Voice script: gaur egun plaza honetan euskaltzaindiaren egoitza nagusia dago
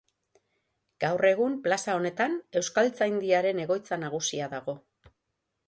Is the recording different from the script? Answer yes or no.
no